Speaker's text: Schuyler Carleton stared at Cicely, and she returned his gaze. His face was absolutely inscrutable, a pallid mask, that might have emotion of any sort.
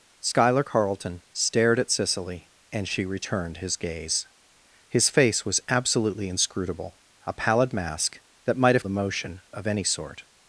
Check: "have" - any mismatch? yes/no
no